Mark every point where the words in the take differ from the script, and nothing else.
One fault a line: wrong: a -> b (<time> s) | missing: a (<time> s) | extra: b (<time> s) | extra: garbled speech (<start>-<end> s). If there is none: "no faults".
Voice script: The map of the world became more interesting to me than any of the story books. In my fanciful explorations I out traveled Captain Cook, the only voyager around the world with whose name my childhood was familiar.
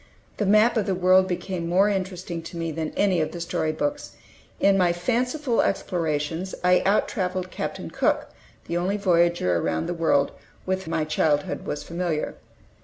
missing: whose name (10.8 s)